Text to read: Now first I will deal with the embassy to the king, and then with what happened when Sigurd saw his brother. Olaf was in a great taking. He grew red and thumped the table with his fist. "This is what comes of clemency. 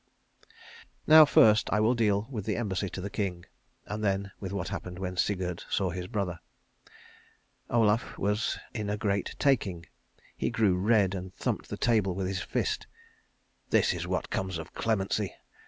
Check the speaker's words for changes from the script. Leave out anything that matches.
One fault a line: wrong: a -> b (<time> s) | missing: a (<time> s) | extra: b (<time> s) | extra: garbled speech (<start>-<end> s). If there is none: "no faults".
no faults